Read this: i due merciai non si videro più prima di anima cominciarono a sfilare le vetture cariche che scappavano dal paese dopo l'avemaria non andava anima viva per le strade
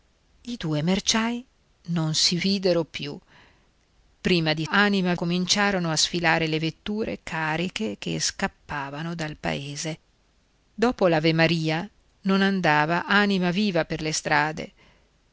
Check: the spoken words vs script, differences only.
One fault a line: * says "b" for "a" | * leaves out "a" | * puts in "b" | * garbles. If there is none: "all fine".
all fine